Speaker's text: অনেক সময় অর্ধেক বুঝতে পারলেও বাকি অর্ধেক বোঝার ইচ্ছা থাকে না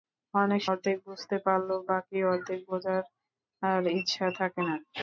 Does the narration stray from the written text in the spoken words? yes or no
yes